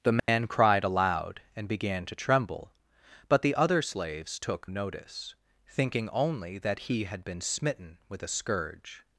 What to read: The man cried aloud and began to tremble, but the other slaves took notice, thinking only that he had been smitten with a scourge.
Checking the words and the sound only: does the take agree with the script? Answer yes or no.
no